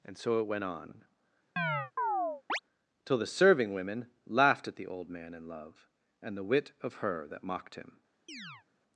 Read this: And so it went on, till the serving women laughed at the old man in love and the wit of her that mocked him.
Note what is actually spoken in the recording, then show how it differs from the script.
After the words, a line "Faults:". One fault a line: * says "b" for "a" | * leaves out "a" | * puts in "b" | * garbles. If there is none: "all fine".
And so it went on, till the serving women laughed at the old man in love and the wit of her that mocked him.
Faults:
all fine